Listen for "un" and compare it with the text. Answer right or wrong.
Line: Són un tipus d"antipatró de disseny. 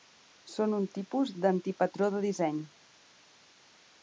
right